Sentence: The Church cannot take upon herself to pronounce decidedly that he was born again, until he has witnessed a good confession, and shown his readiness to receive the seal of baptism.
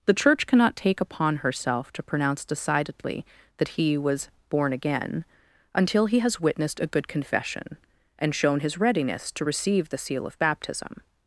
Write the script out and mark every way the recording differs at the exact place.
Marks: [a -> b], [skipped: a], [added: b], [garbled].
The Church cannot take upon herself to pronounce decidedly that he was born again, until he has witnessed a good confession, and shown his readiness to receive the seal of baptism.